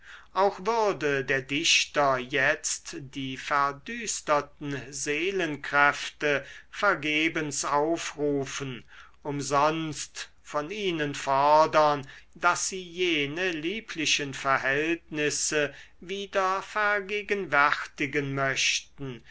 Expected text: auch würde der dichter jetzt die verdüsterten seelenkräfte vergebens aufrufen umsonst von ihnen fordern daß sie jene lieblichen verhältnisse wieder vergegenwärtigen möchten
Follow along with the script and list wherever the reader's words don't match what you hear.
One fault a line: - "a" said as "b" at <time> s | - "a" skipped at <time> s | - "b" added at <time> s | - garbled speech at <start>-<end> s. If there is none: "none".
none